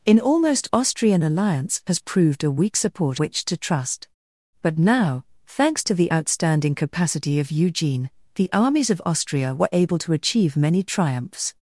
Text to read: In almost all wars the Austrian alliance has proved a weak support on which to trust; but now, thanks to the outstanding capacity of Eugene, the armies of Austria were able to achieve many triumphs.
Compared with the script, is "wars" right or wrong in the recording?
wrong